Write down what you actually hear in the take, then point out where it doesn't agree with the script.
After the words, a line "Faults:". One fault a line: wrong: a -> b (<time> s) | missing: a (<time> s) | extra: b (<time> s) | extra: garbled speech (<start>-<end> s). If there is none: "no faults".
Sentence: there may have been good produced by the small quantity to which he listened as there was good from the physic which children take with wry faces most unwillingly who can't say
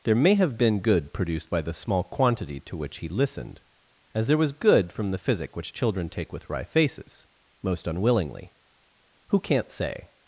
there may have been good produced by the small quantity to which he listened as there was good from the physic which children take with wry faces most unwillingly who can't say
Faults:
no faults